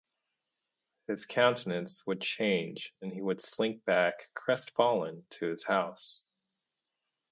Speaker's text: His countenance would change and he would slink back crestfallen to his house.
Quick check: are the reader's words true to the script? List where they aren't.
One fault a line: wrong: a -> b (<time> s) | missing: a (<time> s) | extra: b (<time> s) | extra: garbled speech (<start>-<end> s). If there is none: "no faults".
no faults